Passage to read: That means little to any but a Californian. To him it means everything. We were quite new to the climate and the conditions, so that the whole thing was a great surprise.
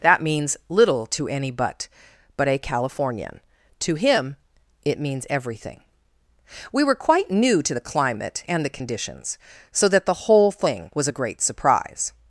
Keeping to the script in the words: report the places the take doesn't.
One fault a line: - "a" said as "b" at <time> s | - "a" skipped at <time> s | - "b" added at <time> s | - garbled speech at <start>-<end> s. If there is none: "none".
- "but" added at 2.4 s